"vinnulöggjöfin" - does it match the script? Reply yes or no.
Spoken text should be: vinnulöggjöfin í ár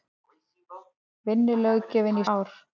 yes